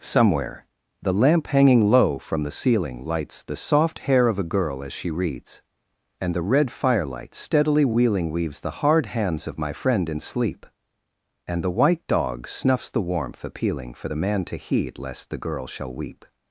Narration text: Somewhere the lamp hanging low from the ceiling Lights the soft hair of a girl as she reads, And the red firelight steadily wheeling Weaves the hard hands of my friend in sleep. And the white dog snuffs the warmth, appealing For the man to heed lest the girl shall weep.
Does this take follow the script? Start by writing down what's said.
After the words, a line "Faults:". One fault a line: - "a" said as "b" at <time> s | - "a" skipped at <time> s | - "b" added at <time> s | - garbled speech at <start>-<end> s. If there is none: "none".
Somewhere the lamp hanging low from the ceiling Lights the soft hair of a girl as she reads, And the red firelight steadily wheeling Weaves the hard hands of my friend in sleep. And the white dog snuffs the warmth, appealing For the man to heed lest the girl shall weep.
Faults:
none